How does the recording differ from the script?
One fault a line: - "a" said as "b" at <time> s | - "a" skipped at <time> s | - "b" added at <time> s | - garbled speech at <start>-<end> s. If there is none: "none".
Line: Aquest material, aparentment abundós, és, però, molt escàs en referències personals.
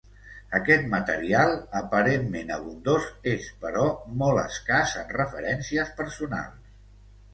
none